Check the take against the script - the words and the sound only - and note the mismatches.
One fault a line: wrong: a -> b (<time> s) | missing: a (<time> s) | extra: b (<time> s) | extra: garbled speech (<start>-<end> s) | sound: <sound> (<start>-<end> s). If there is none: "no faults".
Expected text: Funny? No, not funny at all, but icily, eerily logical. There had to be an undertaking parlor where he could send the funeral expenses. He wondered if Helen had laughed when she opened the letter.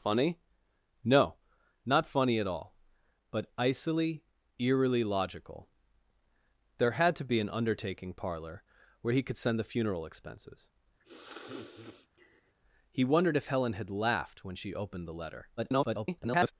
sound: sniff (11.0-12.5 s)
extra: garbled speech (15.6-16.5 s)